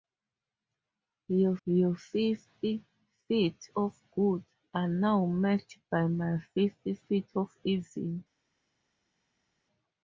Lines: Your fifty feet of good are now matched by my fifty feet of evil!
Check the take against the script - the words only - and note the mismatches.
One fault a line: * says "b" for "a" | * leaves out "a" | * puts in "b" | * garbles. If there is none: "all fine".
* puts in "your"